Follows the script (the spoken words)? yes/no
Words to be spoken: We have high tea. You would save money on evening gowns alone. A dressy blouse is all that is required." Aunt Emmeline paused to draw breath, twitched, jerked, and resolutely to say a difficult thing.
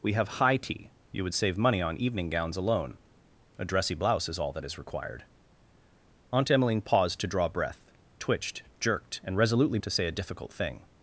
yes